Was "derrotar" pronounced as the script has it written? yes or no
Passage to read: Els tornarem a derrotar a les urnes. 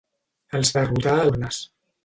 yes